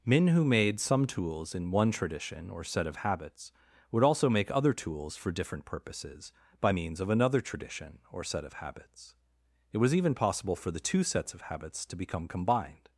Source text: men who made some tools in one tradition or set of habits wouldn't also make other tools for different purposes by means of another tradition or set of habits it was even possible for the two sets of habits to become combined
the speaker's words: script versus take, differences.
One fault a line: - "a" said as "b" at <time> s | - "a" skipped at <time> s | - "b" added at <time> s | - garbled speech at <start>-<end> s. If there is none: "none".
- "wouldn't" said as "would" at 3.9 s